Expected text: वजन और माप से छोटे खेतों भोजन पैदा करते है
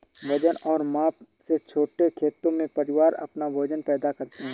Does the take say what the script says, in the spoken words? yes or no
no